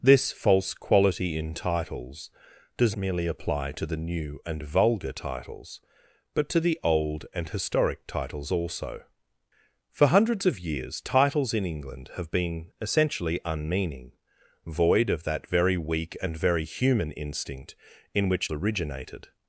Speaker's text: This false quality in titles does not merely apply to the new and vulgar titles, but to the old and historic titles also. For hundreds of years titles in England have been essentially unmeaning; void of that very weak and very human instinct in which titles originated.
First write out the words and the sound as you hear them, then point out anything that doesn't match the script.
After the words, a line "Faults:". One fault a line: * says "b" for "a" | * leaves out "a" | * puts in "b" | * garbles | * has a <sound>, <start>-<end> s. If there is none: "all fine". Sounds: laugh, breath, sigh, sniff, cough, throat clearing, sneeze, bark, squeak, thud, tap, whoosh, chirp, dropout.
This false quality in titles does merely apply to the new and vulgar titles, but to the old and historic titles also. For hundreds of years titles in England have been essentially unmeaning; void of that very weak and very human instinct in which originated.
Faults:
* leaves out "not"
* leaves out "titles"